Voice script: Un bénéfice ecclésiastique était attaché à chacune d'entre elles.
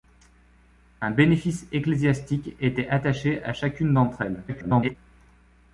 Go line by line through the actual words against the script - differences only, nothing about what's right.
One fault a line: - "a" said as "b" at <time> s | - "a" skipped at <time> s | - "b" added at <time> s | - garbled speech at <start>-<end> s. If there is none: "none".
- garbled speech at 4.5-5.0 s